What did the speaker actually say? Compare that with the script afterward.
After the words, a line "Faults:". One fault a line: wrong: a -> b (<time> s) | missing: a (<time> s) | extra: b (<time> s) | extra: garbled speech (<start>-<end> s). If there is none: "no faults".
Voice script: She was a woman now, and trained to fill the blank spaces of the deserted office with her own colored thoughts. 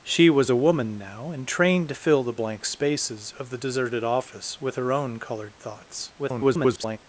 She was a woman now, and trained to fill the blank spaces of the deserted office with her own colored thoughts. [garbled]
Faults:
extra: garbled speech (6.2-7.0 s)